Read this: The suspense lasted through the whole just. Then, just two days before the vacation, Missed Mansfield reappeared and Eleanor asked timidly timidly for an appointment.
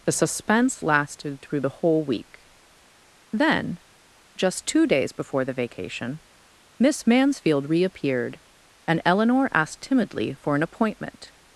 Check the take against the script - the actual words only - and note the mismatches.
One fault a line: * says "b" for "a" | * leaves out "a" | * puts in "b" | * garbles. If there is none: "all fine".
* says "week" for "just"
* says "Miss" for "Missed"
* leaves out "timidly"